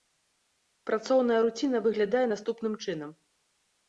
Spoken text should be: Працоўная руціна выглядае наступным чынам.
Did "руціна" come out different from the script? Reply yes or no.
no